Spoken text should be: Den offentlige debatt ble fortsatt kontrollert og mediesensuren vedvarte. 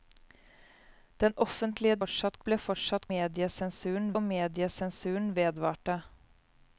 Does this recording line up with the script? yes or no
no